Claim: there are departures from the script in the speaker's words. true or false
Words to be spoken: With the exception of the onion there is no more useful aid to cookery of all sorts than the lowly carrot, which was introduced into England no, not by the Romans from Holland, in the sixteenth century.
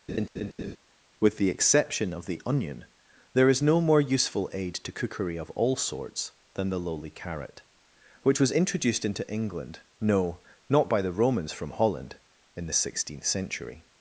false